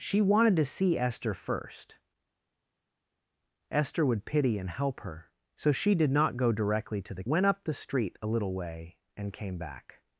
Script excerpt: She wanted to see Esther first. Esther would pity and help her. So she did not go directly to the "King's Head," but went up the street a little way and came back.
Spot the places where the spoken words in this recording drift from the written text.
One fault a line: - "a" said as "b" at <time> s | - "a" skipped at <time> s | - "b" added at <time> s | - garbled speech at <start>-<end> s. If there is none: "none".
- "King's Head but" skipped at 7.2 s